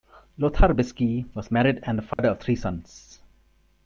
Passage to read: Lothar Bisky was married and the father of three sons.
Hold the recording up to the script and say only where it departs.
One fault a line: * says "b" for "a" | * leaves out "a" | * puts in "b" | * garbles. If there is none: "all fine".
all fine